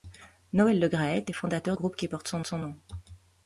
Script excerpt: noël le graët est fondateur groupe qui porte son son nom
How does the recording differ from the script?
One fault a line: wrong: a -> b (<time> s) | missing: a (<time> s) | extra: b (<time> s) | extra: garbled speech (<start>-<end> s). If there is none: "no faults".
no faults